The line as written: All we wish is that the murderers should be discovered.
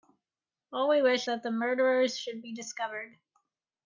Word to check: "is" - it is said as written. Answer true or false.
false